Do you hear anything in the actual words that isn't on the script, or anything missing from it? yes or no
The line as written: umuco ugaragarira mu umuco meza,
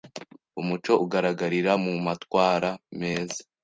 yes